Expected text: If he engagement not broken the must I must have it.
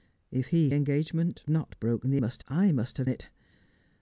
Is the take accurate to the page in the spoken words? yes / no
yes